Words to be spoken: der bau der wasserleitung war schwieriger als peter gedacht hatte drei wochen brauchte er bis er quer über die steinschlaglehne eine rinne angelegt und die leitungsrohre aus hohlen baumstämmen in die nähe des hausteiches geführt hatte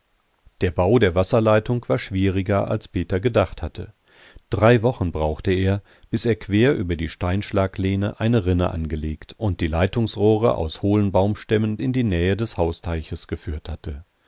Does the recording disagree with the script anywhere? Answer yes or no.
no